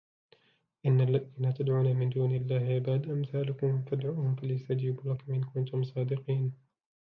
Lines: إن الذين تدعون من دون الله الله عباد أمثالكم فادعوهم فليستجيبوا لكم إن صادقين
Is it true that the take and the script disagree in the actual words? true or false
true